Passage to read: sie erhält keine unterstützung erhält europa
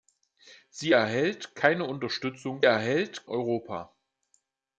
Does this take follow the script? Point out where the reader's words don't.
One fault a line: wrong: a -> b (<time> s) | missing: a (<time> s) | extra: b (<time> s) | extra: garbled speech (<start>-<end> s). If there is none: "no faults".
no faults